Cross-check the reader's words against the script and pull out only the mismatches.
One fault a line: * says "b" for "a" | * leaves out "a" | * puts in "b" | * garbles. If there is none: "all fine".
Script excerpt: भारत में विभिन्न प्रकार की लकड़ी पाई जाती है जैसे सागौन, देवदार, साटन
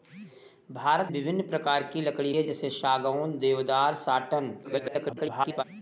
* leaves out "में"
* leaves out "पाई जाती"
* garbles